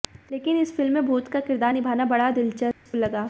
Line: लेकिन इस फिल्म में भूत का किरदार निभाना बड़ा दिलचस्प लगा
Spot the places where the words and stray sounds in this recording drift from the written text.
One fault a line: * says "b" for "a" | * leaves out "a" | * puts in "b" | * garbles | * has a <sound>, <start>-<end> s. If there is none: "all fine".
* has a dropout, 2.7-2.9 s